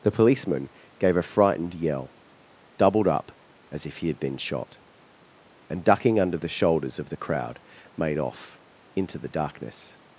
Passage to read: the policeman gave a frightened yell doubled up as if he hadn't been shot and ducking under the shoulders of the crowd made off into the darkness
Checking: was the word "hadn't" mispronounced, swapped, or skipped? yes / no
yes